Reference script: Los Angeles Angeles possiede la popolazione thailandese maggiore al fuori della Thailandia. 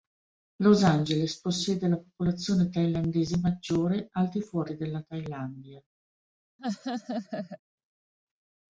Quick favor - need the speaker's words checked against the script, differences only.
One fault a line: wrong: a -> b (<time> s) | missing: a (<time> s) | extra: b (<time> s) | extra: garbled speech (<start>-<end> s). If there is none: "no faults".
missing: Angeles (1.4 s)
extra: di (4.3 s)